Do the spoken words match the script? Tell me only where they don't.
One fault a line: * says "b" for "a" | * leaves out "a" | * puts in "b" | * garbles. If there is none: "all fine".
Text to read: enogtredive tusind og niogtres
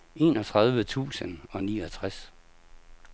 all fine